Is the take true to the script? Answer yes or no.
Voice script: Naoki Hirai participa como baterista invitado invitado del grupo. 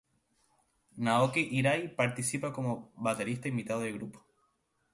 no